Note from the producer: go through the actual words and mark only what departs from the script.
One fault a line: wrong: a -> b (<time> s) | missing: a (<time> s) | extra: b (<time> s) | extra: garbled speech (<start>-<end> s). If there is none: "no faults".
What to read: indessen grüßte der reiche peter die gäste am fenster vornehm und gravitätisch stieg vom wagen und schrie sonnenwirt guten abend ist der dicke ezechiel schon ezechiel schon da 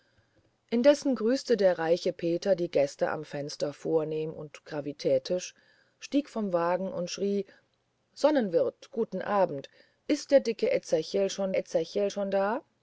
no faults